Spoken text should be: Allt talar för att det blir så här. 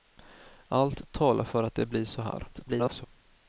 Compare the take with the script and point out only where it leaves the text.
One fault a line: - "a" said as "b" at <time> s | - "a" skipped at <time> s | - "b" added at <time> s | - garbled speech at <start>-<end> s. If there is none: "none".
- garbled speech at 2.5-3.1 s